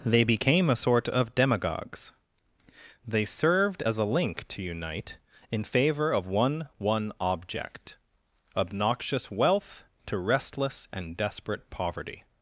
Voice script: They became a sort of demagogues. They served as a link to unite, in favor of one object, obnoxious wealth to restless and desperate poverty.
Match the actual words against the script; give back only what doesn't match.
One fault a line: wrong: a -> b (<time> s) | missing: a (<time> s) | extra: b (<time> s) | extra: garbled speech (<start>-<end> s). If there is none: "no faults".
extra: one (6.8 s)